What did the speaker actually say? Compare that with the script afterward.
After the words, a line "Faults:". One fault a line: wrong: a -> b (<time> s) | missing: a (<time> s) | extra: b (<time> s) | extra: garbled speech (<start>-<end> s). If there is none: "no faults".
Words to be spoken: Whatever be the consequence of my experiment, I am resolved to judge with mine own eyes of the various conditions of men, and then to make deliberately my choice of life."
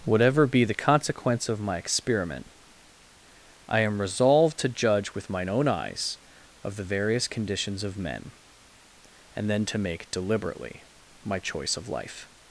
Whatever be the consequence of my experiment, I am resolved to judge with mine own eyes of the various conditions of men, and then to make deliberately my choice of life."
Faults:
no faults